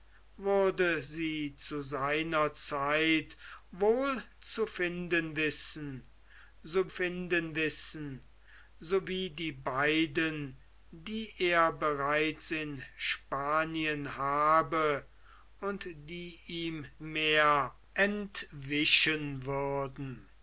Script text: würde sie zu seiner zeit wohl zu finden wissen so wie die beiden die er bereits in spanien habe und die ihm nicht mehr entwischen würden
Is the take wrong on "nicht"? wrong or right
wrong